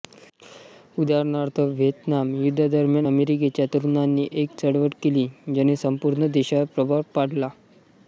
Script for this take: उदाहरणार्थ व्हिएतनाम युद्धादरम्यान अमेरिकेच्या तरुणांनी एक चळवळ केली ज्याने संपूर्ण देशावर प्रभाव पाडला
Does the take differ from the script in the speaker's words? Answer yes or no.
no